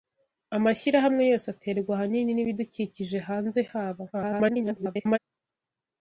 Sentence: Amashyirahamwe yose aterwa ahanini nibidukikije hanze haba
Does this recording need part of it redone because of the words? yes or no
yes